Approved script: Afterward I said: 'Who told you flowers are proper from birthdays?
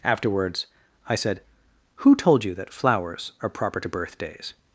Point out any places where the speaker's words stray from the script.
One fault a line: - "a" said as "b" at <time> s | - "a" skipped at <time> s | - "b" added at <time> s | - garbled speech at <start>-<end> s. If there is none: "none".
- "Afterward" said as "Afterwards" at 0.0 s
- "that" added at 2.5 s
- "from" said as "to" at 3.8 s